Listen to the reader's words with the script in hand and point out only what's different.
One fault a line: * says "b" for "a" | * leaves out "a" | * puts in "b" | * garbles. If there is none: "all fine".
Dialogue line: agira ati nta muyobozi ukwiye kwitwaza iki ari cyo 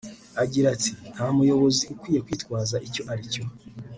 * says "icyo" for "iki"